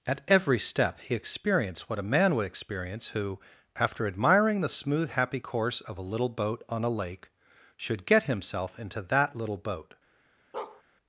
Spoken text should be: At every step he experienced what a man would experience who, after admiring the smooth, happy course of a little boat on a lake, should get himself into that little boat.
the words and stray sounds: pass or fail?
fail